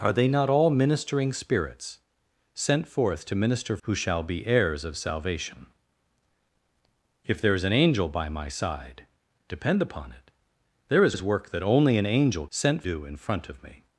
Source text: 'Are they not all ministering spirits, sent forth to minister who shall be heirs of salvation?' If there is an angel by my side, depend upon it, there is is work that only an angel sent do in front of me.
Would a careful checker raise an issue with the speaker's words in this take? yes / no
no